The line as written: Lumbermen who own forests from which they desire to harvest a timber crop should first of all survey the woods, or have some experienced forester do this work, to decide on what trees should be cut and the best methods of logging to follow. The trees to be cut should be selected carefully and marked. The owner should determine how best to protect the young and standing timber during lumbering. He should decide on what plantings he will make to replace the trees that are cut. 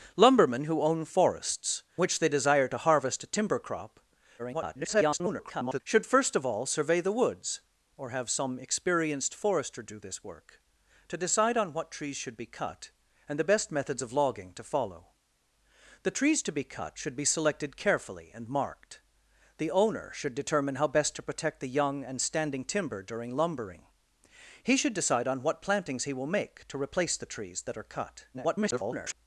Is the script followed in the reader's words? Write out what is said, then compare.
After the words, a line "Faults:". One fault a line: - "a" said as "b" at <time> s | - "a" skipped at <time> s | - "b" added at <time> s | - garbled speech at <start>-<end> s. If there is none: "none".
Lumbermen who own forests which they desire to harvest a timber crop [garbled] should first of all survey the woods, or have some experienced forester do this work, to decide on what trees should be cut and the best methods of logging to follow. The trees to be cut should be selected carefully and marked. The owner should determine how best to protect the young and standing timber during lumbering. He should decide on what plantings he will make to replace the trees that are cut. [garbled]
Faults:
- "from" skipped at 1.8 s
- garbled speech at 4.4-5.8 s
- garbled speech at 28.3-29.1 s